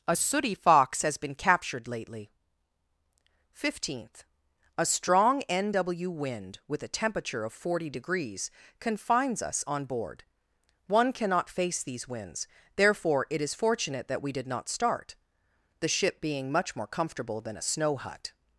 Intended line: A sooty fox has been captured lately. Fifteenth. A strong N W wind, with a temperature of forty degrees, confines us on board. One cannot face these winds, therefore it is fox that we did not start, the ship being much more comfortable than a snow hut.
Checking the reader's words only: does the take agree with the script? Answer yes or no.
no